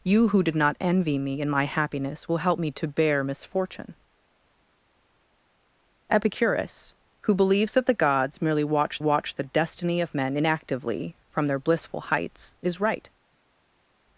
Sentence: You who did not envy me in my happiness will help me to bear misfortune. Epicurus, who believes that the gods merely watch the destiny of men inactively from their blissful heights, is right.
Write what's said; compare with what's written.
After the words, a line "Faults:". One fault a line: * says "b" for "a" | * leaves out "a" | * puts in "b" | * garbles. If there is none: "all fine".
You who did not envy me in my happiness will help me to bear misfortune. Epicurus, who believes that the gods merely watch watch the destiny of men inactively from their blissful heights, is right.
Faults:
* puts in "watch"